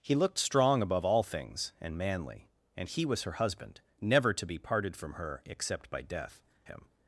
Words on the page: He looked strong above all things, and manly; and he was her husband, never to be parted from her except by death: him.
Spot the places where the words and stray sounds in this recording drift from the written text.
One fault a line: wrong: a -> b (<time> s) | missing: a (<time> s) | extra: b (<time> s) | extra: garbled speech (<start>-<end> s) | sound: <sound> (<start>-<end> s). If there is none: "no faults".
no faults